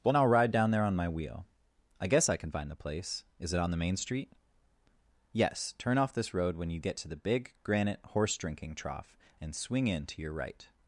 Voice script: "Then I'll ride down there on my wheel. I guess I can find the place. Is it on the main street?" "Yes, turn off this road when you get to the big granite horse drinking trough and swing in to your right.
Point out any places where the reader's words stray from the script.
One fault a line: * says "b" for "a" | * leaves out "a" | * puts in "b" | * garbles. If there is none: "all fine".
* says "Well" for "Then"